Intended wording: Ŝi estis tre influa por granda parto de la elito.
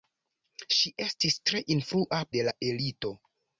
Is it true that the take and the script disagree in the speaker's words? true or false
true